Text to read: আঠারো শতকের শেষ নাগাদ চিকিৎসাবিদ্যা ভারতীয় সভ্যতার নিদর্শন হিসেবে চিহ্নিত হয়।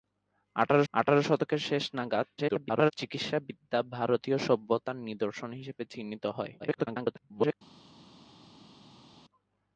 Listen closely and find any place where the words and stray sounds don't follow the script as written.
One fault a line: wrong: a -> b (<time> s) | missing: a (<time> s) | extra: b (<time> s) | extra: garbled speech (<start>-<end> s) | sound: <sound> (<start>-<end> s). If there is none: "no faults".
extra: আঠারো (0.9 s)
extra: garbled speech (2.4-2.9 s)
extra: garbled speech (6.6-7.5 s)